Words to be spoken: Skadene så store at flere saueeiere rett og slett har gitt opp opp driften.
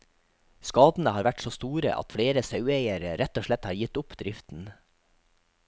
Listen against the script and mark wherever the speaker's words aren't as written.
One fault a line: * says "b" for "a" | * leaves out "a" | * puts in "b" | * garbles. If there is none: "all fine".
* puts in "har vært"
* leaves out "opp"